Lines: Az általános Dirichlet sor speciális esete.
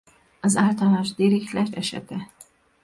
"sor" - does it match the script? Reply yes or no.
no